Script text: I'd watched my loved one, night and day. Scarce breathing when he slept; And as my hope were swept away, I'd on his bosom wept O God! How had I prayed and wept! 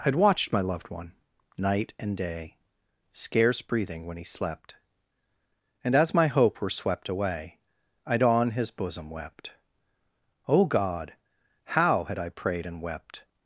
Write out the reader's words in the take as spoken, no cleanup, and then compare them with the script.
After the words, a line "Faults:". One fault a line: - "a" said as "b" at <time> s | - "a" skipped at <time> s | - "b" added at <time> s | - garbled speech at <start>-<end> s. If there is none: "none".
I'd watched my loved one, night and day. Scarce breathing when he slept; And as my hope were swept away, I'd on his bosom wept O God! How had I prayed and wept!
Faults:
none